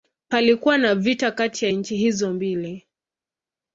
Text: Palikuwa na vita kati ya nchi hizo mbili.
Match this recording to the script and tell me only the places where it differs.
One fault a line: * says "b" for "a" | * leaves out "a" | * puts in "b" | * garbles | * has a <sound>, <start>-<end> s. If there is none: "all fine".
all fine